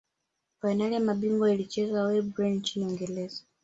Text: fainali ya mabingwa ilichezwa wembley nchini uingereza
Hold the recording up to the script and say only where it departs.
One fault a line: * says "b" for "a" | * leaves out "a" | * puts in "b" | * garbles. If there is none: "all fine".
all fine